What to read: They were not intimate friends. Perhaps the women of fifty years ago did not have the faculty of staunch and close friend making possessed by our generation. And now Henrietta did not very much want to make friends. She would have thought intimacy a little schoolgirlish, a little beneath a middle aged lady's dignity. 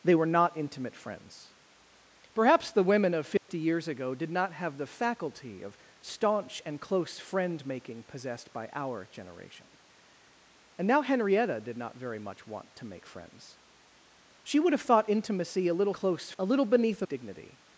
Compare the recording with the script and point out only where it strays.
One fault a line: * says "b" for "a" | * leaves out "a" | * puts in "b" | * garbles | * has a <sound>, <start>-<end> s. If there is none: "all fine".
* has a dropout, 3.4-3.5 s
* says "close" for "schoolgirlish"
* leaves out "middle aged lady's"